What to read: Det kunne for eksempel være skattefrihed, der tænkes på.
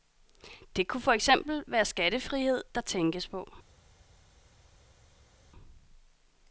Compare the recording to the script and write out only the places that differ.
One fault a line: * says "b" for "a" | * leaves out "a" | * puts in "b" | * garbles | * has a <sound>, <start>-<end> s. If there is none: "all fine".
all fine